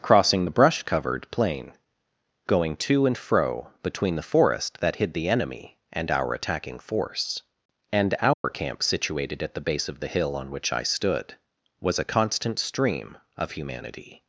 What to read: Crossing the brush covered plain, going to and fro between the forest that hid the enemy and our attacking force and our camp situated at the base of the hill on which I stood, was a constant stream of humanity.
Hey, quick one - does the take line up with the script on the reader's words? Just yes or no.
yes